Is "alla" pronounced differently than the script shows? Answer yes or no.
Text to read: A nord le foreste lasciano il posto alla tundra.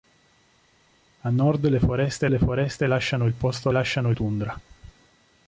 yes